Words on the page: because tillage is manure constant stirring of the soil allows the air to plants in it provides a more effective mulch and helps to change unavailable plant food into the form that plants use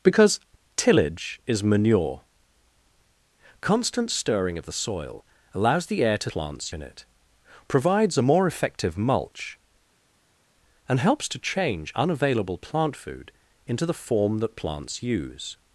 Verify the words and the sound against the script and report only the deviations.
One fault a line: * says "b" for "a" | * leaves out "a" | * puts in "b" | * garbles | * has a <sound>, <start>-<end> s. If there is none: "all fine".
all fine